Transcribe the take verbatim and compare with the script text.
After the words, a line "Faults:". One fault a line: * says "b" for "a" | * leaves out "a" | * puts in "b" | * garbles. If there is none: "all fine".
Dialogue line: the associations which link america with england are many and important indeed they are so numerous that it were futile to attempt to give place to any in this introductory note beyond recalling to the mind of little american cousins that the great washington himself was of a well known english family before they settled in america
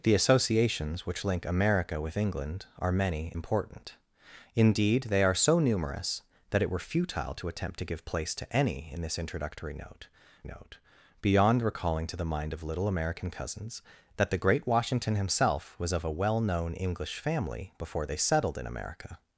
the associations which link america with england are many important indeed they are so numerous that it were futile to attempt to give place to any in this introductory note note beyond recalling to the mind of little american cousins that the great washington himself was of a well known english family before they settled in america
Faults:
* leaves out "and"
* puts in "note"